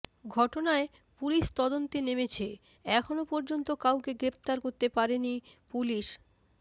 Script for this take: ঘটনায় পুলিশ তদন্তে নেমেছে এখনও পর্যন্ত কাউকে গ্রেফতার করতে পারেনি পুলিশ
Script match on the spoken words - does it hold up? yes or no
yes